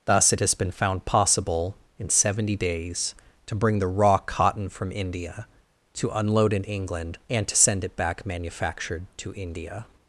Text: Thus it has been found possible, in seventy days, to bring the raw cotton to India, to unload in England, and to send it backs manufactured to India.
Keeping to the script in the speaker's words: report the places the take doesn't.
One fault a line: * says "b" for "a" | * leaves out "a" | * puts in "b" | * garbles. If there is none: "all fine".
* says "from" for "to"
* says "back" for "backs"